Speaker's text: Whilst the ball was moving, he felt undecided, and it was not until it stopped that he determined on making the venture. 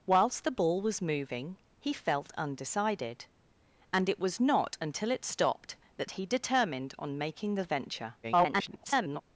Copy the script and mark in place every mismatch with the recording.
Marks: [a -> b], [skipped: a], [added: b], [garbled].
Whilst the ball was moving, he felt undecided, and it was not until it stopped that he determined on making the venture. [garbled]